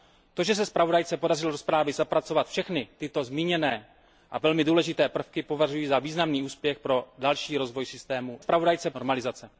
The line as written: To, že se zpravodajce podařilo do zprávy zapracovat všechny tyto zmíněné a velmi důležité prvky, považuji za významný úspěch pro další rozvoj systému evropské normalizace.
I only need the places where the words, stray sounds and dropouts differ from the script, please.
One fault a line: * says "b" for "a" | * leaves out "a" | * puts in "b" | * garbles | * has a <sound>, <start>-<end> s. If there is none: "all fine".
* says "zpravodajce" for "evropské"